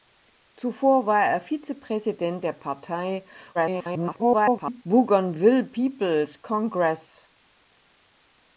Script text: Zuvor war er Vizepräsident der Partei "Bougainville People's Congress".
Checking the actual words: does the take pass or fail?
fail